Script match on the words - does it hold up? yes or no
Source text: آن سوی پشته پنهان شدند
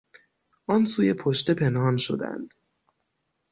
yes